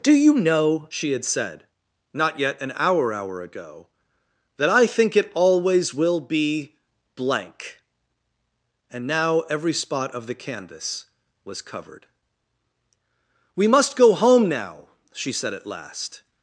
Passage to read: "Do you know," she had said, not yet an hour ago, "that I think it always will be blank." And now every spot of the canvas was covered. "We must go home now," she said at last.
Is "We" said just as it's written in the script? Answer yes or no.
yes